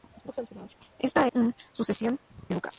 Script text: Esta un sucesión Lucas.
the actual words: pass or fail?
pass